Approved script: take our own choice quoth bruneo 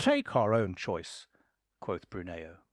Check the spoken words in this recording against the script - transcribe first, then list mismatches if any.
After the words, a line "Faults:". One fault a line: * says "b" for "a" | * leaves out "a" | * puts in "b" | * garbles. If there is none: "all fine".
take our own choice quoth bruneo
Faults:
all fine